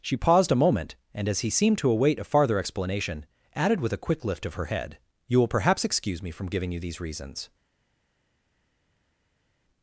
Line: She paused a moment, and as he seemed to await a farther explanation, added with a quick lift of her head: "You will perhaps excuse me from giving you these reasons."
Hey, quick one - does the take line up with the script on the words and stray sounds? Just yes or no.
yes